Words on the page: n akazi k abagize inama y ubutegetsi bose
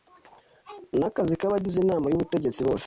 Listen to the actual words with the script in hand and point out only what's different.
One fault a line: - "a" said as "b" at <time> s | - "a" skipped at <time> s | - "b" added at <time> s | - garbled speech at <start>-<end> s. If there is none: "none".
none